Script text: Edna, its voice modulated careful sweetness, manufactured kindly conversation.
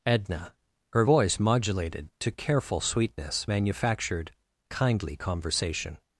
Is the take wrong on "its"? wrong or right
wrong